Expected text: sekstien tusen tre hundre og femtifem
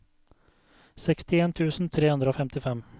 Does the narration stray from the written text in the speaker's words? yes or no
no